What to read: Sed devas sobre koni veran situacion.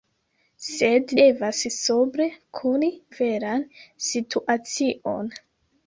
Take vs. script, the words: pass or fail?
pass